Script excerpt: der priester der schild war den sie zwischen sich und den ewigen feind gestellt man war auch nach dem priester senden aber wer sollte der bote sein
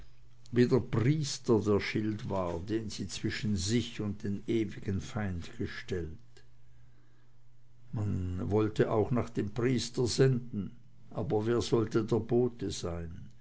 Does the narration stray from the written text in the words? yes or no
yes